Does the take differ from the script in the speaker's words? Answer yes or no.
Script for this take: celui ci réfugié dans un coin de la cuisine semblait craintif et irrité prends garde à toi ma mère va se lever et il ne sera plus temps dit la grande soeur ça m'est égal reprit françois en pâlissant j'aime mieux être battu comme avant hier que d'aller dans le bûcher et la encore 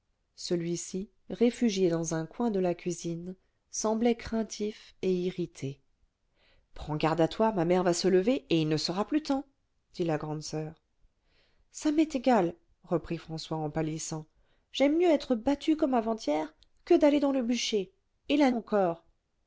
no